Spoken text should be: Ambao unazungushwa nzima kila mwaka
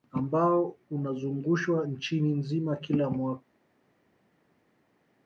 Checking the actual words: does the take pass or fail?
fail